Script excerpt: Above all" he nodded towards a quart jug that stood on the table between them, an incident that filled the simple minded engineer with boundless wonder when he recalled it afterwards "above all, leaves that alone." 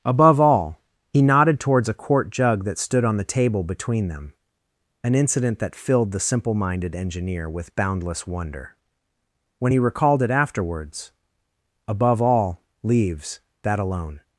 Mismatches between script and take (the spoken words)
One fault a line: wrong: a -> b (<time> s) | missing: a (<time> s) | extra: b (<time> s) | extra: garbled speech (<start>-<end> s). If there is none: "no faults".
no faults